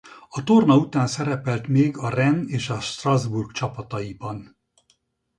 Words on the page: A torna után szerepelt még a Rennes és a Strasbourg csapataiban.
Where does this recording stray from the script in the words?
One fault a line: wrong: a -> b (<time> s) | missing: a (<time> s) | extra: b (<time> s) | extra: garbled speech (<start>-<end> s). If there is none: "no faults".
no faults